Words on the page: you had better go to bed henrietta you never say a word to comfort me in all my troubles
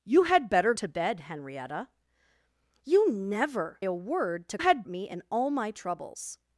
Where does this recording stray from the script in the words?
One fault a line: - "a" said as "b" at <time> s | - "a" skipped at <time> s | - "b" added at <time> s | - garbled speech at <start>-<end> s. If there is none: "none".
- "go" skipped at 0.7 s
- "say" skipped at 3.8 s
- "comfort" said as "had" at 4.6 s